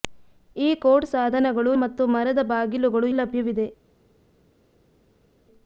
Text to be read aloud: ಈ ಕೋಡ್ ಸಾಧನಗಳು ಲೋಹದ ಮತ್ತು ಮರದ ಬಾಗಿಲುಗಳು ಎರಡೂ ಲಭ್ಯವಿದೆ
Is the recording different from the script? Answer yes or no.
yes